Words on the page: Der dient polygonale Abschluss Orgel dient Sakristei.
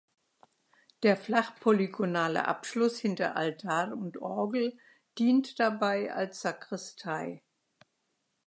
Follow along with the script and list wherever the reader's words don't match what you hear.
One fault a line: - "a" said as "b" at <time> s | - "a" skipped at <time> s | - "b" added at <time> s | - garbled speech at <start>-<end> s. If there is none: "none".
- "dient" said as "flach" at 1.1 s
- "hinter Altar und" added at 3.0 s
- "dabei als" added at 5.6 s